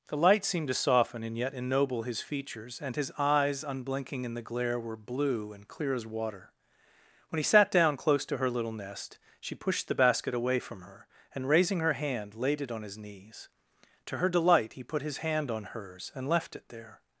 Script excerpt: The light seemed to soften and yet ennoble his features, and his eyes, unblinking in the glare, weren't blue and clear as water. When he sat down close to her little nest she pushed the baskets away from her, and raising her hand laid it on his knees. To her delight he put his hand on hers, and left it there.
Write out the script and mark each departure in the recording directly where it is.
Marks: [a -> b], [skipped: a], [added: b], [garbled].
The light seemed to soften and yet ennoble his features, and his eyes, unblinking in the glare, [weren't -> were] blue and clear as water. When he sat down close to her little nest she pushed the [baskets -> basket] away from her, and raising her hand laid it on his knees. To her delight he put his hand on hers, and left it there.